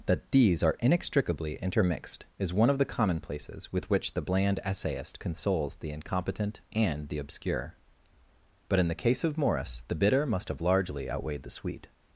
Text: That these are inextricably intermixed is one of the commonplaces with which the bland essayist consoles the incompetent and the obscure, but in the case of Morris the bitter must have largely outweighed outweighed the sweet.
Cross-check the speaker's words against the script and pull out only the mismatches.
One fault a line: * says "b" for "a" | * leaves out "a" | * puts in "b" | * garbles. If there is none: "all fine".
* leaves out "outweighed"